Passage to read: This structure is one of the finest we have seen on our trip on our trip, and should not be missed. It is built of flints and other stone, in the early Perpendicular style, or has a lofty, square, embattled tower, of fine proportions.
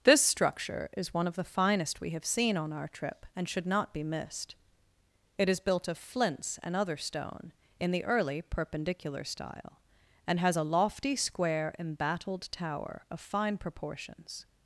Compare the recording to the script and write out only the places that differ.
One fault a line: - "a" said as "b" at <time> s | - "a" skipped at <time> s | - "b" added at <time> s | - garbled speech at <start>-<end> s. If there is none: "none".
- "on our trip" skipped at 3.2 s
- "or" said as "and" at 10.2 s